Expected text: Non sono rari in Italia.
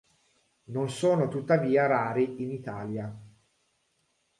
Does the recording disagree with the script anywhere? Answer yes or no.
yes